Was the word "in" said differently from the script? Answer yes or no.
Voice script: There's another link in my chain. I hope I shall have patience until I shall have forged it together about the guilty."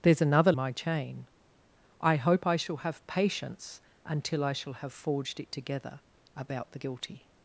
yes